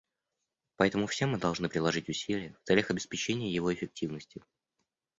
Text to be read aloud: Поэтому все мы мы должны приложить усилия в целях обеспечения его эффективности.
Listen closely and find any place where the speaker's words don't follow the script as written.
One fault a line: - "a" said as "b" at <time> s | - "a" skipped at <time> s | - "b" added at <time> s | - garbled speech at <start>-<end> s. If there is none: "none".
- "мы" skipped at 1.4 s